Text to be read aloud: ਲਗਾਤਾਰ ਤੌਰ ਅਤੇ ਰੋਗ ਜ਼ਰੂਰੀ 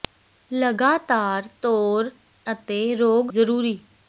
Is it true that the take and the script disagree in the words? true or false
false